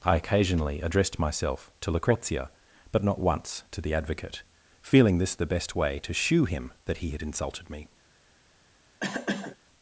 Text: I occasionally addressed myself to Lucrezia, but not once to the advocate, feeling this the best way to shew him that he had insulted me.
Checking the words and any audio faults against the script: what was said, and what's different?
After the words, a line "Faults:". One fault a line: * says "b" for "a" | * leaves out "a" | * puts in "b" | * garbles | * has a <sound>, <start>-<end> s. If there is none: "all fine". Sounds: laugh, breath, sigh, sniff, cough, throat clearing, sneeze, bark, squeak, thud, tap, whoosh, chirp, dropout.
I occasionally addressed myself to Lucrezia, but not once to the advocate, feeling this the best way to shew him that he had insulted me.
Faults:
* has a cough, 9.0-9.6 s